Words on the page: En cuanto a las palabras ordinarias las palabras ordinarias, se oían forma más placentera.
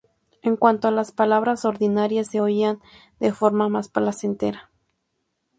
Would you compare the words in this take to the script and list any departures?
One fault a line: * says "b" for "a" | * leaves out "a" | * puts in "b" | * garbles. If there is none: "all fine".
* leaves out "las palabras ordinarias"
* puts in "de"